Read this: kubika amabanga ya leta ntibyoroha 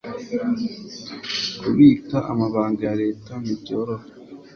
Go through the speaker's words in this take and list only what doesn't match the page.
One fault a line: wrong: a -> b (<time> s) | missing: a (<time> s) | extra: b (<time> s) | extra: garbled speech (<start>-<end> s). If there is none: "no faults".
no faults